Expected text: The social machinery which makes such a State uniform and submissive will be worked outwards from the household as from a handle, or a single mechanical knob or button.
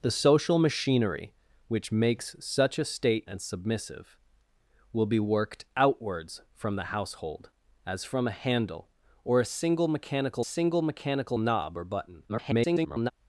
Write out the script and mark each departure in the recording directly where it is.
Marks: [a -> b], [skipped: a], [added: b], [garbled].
The social machinery which makes such a State [skipped: uniform] and submissive will be worked outwards from the household as from a handle, or a single mechanical [added: single mechanical] knob or button. [garbled]